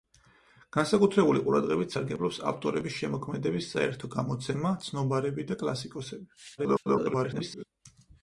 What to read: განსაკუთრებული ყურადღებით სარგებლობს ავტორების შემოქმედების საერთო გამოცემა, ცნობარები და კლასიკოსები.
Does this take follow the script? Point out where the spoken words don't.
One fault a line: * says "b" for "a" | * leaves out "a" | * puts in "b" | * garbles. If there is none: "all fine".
* garbles